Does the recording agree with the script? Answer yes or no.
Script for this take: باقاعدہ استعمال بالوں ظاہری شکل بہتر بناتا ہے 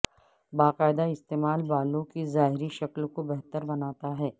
no